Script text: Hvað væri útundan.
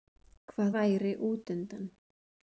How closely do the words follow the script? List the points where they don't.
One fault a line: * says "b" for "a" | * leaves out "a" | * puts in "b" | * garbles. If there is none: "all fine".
all fine